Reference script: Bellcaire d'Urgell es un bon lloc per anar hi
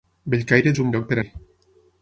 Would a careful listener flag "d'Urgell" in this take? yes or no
yes